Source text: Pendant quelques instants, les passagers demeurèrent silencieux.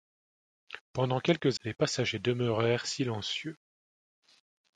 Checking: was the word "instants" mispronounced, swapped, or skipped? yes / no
yes